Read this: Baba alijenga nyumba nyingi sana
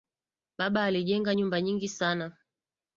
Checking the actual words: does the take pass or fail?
pass